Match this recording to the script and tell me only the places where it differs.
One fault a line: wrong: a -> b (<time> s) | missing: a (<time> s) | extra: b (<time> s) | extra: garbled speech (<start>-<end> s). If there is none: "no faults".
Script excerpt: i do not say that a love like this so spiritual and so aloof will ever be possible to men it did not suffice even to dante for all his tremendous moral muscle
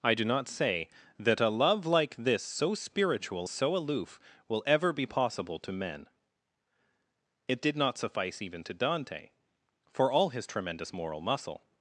missing: and (3.5 s)